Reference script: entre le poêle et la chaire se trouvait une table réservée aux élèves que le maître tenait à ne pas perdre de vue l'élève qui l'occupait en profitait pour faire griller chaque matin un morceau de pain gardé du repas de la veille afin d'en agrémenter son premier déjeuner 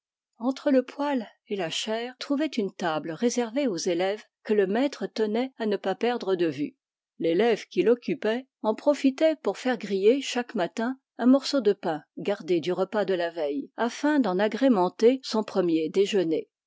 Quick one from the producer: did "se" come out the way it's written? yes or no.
no